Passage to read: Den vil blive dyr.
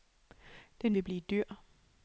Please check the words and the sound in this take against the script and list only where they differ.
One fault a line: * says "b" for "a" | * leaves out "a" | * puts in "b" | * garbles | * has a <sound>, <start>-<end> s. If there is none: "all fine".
all fine